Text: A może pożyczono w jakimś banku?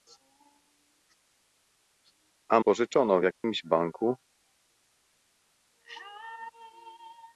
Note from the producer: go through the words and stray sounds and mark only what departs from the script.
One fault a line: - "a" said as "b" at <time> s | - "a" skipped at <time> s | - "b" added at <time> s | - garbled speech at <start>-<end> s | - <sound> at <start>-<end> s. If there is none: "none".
- "może" skipped at 2.6 s
- dropout at 3.3-3.4 s